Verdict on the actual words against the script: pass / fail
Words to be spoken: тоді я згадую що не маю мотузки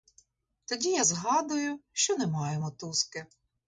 pass